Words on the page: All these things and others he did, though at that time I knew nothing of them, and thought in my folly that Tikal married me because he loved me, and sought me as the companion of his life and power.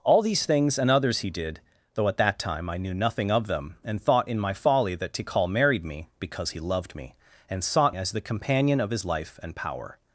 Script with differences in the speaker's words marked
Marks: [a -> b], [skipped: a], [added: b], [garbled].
All these things and others he did, though at that time I knew nothing of them, and thought in my folly that Tikal married me because he loved me, and sought [skipped: me] as the companion of his life and power.